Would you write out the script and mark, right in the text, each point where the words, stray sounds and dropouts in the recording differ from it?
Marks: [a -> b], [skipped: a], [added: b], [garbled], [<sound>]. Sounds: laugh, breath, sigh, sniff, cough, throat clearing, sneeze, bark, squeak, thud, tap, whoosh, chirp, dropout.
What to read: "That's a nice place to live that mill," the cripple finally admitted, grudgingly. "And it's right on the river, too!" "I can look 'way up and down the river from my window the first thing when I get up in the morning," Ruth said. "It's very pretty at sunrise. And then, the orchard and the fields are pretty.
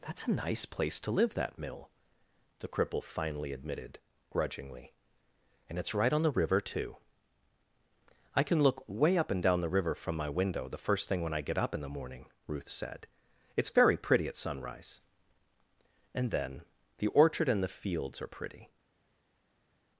"That's a nice place to live that mill," the cripple finally admitted, grudgingly. "And it's right on the river, too!" "I can look 'way up and down the river from my window the first thing when I get up in the morning," Ruth said. "It's very pretty at sunrise. And then, the orchard and the fields are pretty.